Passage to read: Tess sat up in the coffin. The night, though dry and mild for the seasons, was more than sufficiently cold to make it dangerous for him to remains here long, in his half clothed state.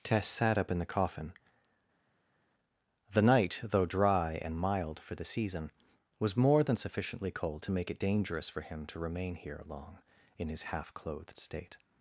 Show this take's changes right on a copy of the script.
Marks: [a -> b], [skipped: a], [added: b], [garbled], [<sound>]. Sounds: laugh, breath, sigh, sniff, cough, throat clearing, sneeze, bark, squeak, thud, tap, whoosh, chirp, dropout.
Tess sat up in the coffin. The night, though dry and mild for the [seasons, -> season] was more than sufficiently cold to make it dangerous for him to [remains -> remain] here long, in his half clothed state.